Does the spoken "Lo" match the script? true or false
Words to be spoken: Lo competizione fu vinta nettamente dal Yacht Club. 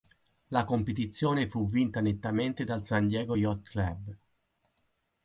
false